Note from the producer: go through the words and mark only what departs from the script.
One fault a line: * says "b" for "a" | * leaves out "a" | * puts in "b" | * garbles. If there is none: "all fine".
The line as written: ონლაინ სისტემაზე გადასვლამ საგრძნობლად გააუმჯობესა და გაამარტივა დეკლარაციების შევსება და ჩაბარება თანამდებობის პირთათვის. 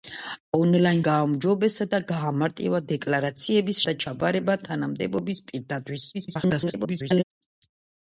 * leaves out "სისტემაზე გადასვლამ საგრძნობლად"
* leaves out "შევსება"
* garbles